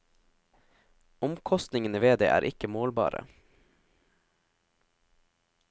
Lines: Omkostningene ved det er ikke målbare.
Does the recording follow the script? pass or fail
pass